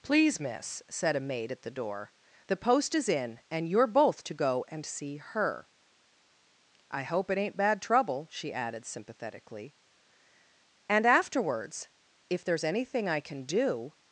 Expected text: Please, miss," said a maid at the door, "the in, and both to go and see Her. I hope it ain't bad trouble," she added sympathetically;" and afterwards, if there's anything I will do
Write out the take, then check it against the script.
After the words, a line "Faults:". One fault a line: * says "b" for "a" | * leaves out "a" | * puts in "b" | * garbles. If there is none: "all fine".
Please, miss," said a maid at the door, "the post is in, and you're both to go and see Her. I hope it ain't bad trouble," she added sympathetically;" and afterwards, if there's anything I can do
Faults:
* puts in "post is"
* puts in "you're"
* says "can" for "will"